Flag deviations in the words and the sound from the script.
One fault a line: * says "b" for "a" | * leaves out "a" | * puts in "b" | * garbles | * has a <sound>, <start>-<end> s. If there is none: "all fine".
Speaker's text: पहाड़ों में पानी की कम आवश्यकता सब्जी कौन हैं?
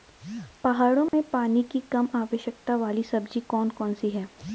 * has a dropout, 1.1-1.1 s
* puts in "वाली"
* puts in "कौन सी"